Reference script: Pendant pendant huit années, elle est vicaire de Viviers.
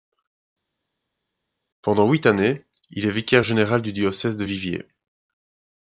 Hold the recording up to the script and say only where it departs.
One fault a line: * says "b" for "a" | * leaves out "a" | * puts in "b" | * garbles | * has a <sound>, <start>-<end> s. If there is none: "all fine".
* leaves out "pendant"
* says "il" for "elle"
* puts in "général du diocèse"